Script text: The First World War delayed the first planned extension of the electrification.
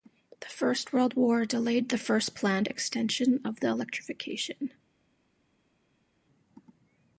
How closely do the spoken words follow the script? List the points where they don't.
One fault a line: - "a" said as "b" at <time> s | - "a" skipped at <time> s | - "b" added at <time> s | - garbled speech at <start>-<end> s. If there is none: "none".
none